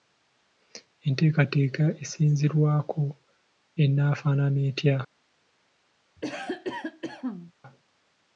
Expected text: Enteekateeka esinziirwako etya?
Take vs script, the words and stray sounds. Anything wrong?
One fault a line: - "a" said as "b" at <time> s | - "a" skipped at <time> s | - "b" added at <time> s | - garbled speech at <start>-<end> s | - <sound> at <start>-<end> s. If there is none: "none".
- "enaafaanana" added at 3.8 s
- cough at 6.2-7.5 s